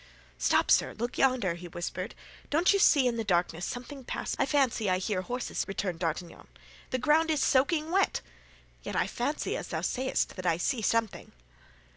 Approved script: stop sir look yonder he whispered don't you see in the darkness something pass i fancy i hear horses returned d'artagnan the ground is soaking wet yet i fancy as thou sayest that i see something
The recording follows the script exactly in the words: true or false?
true